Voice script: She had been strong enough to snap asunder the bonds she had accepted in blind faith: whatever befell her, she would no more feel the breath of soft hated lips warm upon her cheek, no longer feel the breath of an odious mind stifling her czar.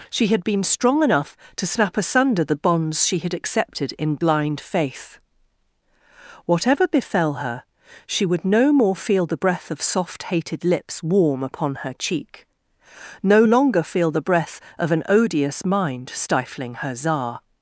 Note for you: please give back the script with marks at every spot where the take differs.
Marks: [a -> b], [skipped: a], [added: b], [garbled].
She had been strong enough to snap asunder the bonds she had accepted in blind faith: whatever befell her, she would no more feel the breath of soft hated lips warm upon her cheek, no longer feel the breath of an odious mind stifling her czar.